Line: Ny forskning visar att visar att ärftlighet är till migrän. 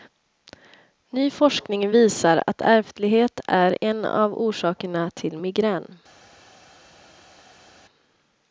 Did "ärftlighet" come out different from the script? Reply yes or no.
yes